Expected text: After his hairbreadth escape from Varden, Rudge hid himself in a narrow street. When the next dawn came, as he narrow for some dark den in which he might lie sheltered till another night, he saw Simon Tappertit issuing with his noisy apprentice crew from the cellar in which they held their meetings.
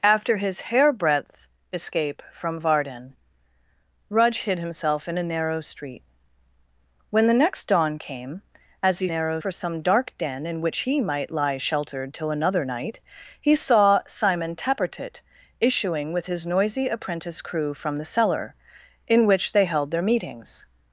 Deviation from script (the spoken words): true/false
false